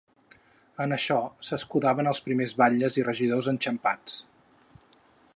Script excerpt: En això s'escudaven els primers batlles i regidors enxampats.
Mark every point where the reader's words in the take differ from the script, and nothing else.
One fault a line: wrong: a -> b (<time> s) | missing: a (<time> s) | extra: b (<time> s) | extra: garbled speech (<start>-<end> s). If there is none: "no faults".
no faults